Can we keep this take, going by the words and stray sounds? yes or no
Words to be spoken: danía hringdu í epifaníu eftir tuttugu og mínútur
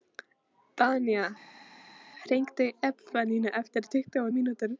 yes